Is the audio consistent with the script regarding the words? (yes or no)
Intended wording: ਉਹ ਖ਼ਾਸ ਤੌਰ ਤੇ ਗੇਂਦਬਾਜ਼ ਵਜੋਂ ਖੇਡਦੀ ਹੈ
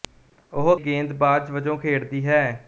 no